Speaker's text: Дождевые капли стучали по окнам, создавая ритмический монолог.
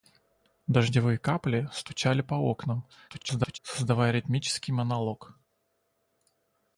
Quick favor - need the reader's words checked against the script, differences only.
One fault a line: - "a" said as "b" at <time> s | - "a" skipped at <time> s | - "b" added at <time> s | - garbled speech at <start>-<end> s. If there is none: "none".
- garbled speech at 3.1-3.6 s